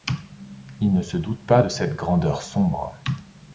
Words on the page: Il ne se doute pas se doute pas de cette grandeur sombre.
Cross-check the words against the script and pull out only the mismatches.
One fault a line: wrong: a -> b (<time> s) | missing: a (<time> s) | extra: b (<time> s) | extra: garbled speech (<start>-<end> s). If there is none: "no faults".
missing: se doute pas (1.6 s)